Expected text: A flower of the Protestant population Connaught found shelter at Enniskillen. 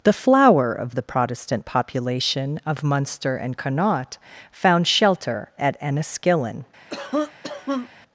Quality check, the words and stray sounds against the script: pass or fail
fail